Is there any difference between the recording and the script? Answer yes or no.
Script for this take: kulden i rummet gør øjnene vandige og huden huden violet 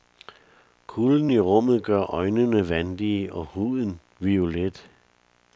yes